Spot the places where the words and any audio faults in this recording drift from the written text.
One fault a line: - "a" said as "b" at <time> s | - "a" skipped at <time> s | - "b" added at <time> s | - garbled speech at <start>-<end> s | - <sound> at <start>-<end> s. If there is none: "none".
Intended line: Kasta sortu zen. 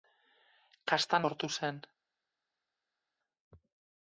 none